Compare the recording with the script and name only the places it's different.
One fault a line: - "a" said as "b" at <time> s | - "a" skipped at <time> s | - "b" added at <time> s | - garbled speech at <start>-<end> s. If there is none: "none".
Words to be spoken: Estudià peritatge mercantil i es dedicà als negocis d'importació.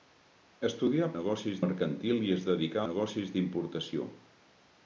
- "peritatge" said as "negocis" at 1.2 s
- "als" skipped at 2.8 s